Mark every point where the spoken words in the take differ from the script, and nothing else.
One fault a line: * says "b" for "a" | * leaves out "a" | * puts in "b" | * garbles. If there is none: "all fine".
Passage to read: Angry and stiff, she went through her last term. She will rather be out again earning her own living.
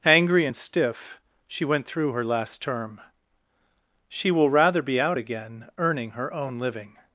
all fine